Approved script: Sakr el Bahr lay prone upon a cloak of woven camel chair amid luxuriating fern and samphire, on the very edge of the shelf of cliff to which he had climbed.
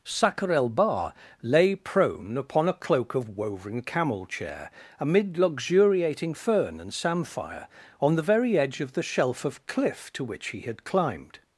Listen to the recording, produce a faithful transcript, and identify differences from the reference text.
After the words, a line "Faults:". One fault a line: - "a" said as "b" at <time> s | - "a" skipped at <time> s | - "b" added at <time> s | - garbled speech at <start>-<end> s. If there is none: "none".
Sakr el Bahr lay prone upon a cloak of woven camel chair amid luxuriating fern and samphire, on the very edge of the shelf of cliff to which he had climbed.
Faults:
none